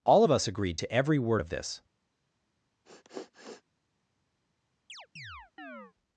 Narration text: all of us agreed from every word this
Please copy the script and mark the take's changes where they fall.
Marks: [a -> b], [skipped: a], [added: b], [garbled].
all of us agreed [from -> to] every word [added: of] this